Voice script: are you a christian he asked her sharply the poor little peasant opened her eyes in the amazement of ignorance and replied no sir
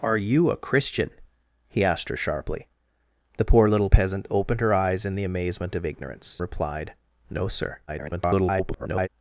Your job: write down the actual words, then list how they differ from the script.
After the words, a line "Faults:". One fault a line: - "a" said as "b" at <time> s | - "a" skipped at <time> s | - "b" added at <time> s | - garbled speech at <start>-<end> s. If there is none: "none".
are you a christian he asked her sharply the poor little peasant opened her eyes in the amazement of ignorance replied no sir [garbled]
Faults:
- "and" skipped at 6.4 s
- garbled speech at 7.9-9.1 s